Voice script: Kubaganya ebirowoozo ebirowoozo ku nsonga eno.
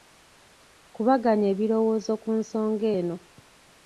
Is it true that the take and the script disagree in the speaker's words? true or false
true